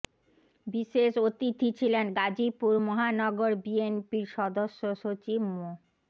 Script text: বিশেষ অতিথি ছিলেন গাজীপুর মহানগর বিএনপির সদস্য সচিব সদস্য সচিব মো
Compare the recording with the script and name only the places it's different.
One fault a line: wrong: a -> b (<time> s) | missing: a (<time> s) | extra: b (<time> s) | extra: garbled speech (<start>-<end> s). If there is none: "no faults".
missing: সদস্য সচিব (5.4 s)